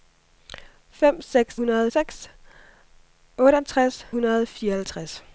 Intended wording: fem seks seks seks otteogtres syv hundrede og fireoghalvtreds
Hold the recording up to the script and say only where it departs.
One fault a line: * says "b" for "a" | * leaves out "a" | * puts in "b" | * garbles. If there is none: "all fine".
* says "hundrede" for "seks"
* leaves out "syv"